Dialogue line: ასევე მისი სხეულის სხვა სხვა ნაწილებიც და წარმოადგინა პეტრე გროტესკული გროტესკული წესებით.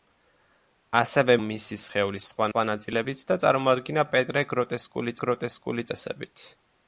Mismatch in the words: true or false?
false